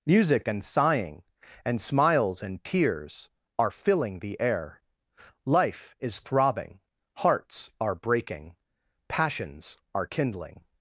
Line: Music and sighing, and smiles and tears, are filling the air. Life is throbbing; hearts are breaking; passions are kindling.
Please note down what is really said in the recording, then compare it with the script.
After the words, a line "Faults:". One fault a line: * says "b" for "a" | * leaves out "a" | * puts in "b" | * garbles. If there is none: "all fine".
Music and sighing, and smiles and tears, are filling the air. Life is throbbing; hearts are breaking; passions are kindling.
Faults:
all fine